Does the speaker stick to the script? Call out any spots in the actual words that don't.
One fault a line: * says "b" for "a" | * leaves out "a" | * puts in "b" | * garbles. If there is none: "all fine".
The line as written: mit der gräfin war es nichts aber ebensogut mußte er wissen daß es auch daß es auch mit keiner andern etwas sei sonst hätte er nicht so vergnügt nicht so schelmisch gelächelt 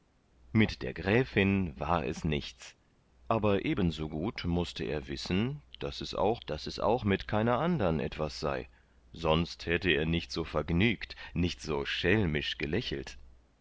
all fine